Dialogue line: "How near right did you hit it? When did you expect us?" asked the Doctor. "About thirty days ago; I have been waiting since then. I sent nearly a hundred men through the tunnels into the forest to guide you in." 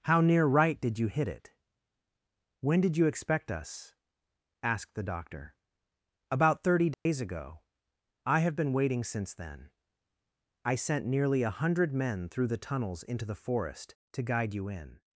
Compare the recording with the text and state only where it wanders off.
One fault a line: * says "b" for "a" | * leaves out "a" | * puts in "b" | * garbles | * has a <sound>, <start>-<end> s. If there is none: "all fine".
* has a dropout, 6.9-7.1 s